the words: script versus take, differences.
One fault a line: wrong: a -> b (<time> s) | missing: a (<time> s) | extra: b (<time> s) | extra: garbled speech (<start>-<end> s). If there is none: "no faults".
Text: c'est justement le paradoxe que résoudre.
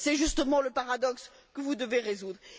extra: vous devez (1.6 s)